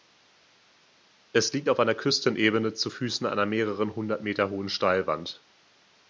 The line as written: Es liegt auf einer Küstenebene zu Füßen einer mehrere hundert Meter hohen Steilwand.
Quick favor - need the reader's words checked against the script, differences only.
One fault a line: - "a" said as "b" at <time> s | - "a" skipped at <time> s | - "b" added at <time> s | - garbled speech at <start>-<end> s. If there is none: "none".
none